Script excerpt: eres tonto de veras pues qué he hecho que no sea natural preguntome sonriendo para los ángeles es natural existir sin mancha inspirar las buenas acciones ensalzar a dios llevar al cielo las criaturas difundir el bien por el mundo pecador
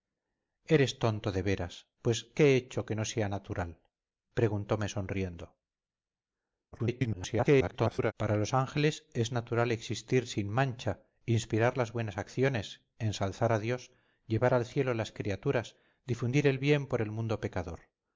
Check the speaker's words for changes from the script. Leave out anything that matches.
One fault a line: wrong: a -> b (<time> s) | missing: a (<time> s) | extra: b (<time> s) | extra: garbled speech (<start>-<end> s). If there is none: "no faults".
extra: garbled speech (6.7-8.1 s)